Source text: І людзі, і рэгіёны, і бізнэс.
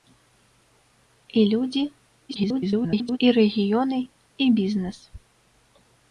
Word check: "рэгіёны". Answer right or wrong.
right